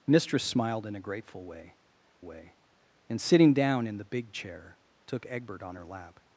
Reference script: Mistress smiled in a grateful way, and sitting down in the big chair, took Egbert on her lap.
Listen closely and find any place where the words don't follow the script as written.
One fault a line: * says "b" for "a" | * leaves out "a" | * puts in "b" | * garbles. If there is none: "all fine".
* puts in "way"